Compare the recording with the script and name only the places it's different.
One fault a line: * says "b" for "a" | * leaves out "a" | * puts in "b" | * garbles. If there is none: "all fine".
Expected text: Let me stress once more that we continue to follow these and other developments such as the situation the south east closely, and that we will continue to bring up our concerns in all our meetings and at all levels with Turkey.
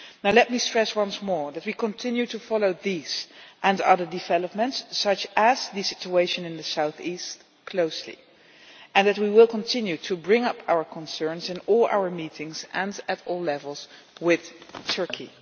* puts in "in"